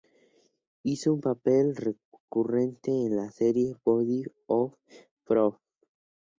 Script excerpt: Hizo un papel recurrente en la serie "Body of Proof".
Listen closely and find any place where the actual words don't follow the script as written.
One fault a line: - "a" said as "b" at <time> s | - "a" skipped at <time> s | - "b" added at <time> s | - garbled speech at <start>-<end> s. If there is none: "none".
none